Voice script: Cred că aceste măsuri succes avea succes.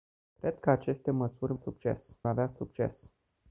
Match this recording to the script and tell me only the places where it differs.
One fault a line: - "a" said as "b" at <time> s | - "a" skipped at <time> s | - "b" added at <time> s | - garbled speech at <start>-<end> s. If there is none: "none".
none